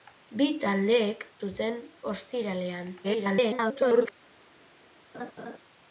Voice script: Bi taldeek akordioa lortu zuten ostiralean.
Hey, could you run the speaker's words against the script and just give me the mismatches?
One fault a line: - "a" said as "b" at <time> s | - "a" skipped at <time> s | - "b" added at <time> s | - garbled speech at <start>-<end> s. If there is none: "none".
- "akordioa lortu" skipped at 1.2 s
- garbled speech at 3.0-4.1 s